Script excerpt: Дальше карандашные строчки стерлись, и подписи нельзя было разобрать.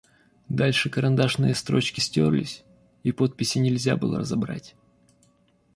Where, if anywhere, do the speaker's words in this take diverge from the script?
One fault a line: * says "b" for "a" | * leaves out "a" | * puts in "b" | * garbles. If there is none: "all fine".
all fine